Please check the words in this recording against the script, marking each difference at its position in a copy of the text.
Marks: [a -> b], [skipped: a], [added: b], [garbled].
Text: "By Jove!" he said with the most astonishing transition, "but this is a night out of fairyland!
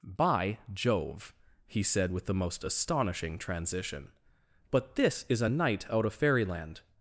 "By Jove!" he said with the most astonishing transition, "but this is a night out of fairyland!